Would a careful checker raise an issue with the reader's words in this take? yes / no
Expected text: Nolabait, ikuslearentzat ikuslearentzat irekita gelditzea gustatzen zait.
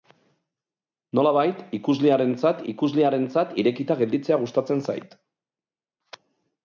no